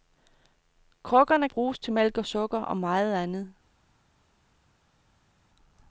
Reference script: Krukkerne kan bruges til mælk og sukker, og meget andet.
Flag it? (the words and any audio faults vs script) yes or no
yes